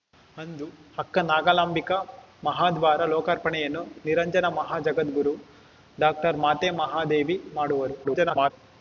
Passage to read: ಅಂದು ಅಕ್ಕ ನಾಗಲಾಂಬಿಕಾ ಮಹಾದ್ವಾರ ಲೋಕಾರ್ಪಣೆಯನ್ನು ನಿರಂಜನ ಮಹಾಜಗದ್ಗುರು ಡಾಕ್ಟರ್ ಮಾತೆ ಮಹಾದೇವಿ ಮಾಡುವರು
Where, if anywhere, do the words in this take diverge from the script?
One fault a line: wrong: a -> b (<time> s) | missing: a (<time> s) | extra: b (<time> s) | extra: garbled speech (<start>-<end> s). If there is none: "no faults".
extra: garbled speech (8.0-8.5 s)